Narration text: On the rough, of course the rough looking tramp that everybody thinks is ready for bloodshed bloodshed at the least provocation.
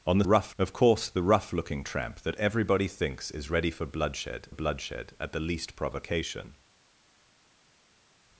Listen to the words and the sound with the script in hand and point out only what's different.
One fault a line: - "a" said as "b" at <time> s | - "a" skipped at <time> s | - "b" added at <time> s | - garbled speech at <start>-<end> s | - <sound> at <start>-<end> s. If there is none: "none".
none